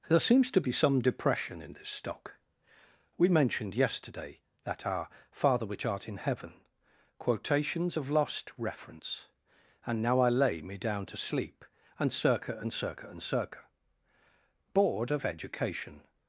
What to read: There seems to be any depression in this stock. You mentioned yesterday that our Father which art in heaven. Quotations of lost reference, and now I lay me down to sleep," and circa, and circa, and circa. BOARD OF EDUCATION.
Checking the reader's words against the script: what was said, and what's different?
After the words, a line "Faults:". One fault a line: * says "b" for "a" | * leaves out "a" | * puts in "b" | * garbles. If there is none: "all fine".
There seems to be some depression in this stock. We mentioned yesterday that our Father which art in heaven. Quotations of lost reference, and now I lay me down to sleep," and circa, and circa, and circa. BOARD OF EDUCATION.
Faults:
* says "some" for "any"
* says "We" for "You"